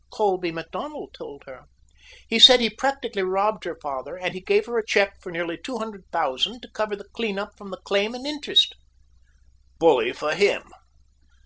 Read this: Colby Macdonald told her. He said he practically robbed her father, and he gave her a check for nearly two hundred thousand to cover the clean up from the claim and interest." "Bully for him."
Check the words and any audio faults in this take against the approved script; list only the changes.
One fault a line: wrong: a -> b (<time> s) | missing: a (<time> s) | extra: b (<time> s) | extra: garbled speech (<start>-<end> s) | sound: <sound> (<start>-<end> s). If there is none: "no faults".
no faults